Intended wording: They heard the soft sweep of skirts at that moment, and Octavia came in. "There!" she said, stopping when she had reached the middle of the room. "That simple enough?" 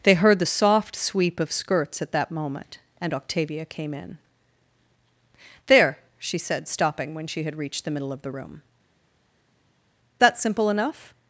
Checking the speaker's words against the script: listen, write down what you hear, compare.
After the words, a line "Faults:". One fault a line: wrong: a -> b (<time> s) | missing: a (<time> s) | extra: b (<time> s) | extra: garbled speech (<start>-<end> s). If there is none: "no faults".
They heard the soft sweep of skirts at that moment, and Octavia came in. "There!" she said, stopping when she had reached the middle of the room. "That simple enough?"
Faults:
no faults